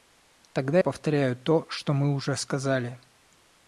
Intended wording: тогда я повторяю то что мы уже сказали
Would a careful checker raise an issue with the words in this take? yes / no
yes